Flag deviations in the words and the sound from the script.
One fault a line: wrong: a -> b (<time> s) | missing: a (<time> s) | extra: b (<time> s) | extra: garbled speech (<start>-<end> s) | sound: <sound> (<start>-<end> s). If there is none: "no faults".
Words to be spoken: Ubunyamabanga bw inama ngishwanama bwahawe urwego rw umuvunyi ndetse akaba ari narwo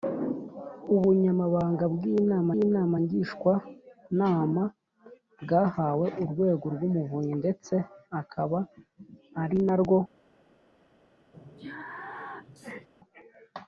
extra: inama (2.6 s)
sound: sneeze (11.3-12.9 s)